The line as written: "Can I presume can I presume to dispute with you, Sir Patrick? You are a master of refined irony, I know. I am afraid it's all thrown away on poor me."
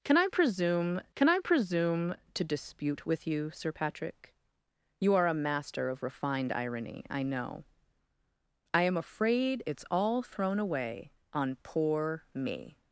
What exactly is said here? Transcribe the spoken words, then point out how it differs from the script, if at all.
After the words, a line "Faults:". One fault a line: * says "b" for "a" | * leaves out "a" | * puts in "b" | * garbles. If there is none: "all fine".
"Can I presume can I presume to dispute with you, Sir Patrick? You are a master of refined irony, I know. I am afraid it's all thrown away on poor me."
Faults:
all fine